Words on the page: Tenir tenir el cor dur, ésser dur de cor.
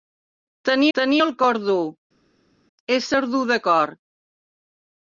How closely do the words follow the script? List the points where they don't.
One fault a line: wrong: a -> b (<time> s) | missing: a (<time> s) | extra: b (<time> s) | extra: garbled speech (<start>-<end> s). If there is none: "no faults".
no faults